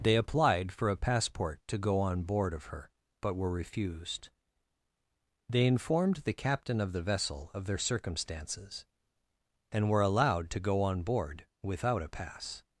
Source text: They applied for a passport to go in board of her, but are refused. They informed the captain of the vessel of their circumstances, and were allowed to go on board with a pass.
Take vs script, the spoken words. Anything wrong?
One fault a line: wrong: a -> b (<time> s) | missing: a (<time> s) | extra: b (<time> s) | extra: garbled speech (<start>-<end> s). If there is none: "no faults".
wrong: in -> on (2.0 s)
wrong: are -> were (3.4 s)
wrong: with -> without (11.6 s)